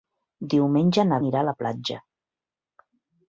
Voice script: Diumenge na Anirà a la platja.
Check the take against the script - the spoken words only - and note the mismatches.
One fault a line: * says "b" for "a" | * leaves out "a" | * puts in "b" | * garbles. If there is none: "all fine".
all fine